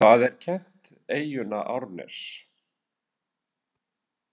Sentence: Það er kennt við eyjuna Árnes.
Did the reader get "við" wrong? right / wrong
wrong